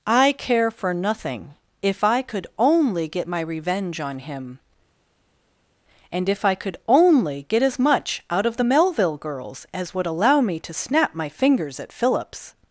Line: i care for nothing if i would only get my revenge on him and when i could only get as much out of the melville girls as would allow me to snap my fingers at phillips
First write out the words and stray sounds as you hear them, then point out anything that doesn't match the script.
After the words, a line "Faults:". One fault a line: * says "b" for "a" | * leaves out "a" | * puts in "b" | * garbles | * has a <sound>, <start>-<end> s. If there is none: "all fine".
i care for nothing if i could only get my revenge on him and if i could only get as much out of the melville girls as would allow me to snap my fingers at phillips
Faults:
* says "could" for "would"
* says "if" for "when"